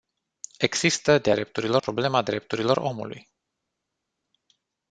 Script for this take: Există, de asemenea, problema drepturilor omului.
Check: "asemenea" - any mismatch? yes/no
yes